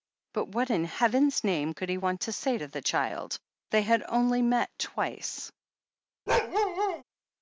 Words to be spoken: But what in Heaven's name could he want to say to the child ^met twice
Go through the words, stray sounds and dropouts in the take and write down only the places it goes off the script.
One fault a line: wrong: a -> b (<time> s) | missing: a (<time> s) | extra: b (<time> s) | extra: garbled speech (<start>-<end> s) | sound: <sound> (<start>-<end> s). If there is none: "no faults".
extra: they had only (3.7 s)
sound: bark (6.3-7.0 s)